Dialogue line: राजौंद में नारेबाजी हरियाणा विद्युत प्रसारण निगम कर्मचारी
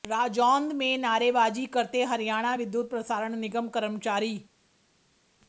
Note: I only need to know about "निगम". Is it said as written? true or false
true